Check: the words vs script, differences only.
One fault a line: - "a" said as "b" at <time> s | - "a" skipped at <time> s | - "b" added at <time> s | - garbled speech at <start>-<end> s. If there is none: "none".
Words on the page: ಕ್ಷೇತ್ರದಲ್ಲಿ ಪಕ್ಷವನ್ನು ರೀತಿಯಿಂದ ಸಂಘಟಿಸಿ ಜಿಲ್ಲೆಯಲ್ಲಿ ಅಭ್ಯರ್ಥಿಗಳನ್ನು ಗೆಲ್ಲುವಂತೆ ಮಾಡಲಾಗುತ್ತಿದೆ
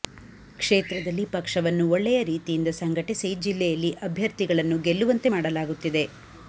- "ಒಳ್ಳೆಯ" added at 1.9 s